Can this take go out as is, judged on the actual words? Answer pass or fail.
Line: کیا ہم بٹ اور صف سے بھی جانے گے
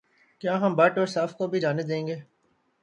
fail